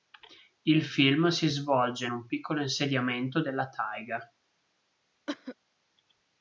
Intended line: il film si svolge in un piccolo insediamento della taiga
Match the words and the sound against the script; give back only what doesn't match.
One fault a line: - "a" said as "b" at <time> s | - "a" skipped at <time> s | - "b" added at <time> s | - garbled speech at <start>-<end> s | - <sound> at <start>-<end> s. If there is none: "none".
- cough at 5.3-5.6 s